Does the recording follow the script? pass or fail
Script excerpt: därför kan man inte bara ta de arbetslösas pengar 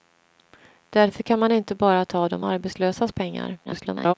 fail